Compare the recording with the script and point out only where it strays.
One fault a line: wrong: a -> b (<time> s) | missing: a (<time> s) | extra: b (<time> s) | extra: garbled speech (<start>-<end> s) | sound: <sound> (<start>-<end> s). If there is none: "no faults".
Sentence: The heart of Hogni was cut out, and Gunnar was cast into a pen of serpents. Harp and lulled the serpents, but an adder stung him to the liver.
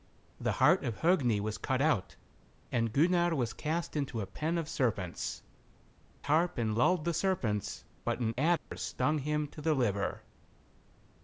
sound: dropout (8.6-8.7 s)